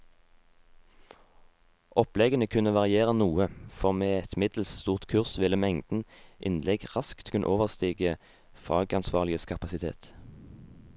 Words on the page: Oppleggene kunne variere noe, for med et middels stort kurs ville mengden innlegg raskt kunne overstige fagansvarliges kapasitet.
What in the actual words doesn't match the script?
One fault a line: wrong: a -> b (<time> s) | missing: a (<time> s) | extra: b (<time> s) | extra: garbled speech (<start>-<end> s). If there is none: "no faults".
no faults